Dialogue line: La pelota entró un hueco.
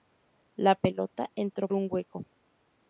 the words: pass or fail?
pass